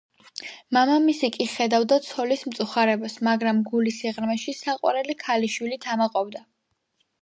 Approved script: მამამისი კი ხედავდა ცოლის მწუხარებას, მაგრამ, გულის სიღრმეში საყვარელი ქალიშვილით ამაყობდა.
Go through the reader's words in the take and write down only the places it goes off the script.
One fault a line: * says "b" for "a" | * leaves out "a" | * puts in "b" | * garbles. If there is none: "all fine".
all fine